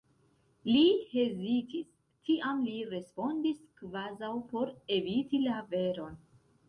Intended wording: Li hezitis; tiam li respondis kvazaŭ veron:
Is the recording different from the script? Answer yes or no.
yes